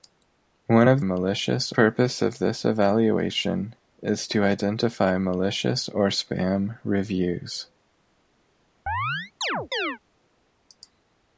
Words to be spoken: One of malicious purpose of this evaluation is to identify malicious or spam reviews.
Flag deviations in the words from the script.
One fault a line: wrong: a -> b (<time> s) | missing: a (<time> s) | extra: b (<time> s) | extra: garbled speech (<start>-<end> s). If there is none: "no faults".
no faults